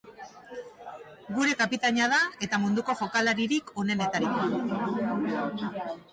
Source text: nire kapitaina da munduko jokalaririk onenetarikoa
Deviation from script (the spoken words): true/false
true